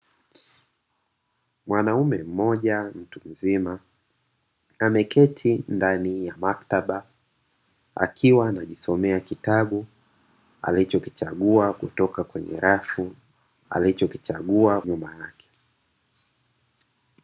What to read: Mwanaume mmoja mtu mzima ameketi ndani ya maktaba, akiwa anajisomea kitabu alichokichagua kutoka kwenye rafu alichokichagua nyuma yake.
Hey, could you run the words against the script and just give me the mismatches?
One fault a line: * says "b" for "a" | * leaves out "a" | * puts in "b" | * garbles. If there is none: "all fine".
all fine